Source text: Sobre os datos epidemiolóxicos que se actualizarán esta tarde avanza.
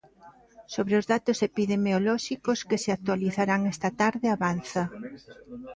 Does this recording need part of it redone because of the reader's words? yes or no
no